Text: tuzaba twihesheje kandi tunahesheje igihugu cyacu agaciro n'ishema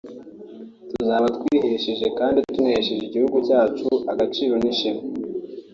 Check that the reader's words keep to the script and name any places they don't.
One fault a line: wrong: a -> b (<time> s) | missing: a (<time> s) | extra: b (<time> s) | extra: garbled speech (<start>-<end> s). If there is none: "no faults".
no faults